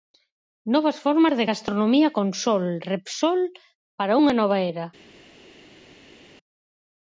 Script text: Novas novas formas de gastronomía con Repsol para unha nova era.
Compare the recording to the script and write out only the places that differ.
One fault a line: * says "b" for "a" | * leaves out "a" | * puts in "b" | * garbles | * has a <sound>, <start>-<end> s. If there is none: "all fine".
* leaves out "novas"
* puts in "sol"